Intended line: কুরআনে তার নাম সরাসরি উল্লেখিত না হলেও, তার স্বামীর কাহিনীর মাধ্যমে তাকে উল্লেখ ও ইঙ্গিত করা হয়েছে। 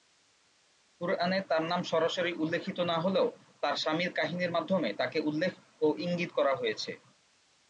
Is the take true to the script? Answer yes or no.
yes